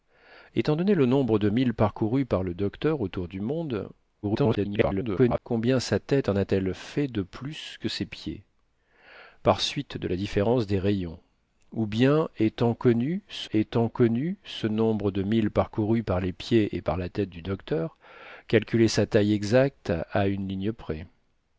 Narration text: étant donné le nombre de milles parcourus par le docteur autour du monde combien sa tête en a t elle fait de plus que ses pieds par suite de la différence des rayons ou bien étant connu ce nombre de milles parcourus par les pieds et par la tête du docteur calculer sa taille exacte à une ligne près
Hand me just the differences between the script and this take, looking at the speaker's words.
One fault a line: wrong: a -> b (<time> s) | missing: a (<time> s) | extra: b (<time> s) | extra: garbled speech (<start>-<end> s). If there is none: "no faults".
extra: garbled speech (4.2-5.4 s)
extra: étant connu ce (13.5 s)